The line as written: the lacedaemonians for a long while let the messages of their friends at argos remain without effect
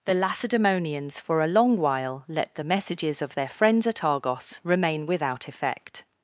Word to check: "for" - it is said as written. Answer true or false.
true